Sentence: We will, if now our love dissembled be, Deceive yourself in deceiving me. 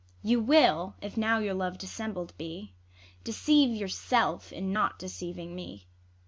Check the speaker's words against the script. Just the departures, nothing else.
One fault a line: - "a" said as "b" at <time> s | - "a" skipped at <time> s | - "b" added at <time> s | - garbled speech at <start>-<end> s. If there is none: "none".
- "We" said as "You" at 0.2 s
- "our" said as "your" at 1.4 s
- "not" added at 4.7 s